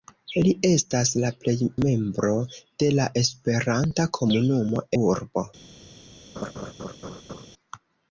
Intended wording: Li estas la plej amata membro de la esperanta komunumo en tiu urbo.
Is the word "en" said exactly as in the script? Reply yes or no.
no